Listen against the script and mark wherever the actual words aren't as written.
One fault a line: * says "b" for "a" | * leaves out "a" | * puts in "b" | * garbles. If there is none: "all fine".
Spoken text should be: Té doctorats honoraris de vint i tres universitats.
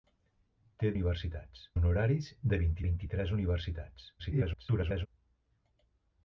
* says "universitats" for "doctorats"
* puts in "vint"
* garbles